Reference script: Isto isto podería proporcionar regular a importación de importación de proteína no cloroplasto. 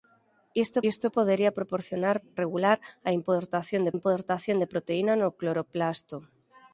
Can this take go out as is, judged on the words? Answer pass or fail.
pass